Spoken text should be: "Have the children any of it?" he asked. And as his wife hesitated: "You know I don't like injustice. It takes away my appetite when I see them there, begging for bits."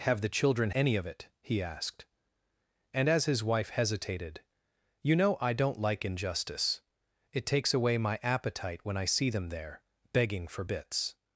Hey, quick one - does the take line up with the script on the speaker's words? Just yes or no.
yes